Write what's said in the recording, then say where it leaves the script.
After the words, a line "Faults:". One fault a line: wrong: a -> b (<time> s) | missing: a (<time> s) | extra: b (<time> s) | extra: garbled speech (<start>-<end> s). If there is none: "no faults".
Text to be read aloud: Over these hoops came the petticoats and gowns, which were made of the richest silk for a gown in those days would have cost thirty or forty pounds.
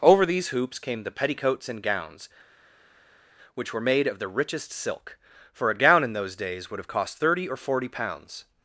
Over these hoops came the petticoats and gowns, which were made of the richest silk for a gown in those days would have cost thirty or forty pounds.
Faults:
no faults